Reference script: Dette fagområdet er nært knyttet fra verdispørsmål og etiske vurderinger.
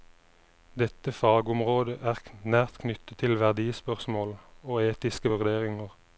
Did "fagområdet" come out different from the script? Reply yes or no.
no